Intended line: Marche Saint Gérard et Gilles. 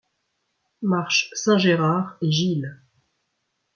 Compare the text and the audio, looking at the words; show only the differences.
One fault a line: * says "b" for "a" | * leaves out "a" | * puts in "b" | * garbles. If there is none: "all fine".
all fine